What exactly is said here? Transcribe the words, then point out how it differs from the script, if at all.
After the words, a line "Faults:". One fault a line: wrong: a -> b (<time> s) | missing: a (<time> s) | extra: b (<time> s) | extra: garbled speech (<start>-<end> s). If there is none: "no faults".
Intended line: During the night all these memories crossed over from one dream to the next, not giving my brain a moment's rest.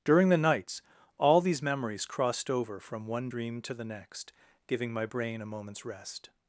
During the nights all these memories crossed over from one dream to the next, giving my brain a moment's rest.
Faults:
wrong: night -> nights (0.4 s)
missing: not (4.3 s)